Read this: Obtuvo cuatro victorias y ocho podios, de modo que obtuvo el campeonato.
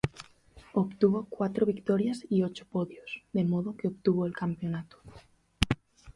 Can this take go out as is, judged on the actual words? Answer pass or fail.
pass